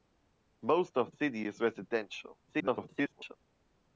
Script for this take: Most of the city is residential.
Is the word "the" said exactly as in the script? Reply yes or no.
no